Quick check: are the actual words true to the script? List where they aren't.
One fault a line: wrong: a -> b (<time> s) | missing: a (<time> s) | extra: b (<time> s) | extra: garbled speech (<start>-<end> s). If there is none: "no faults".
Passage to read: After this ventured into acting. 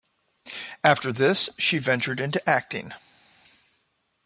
extra: she (1.6 s)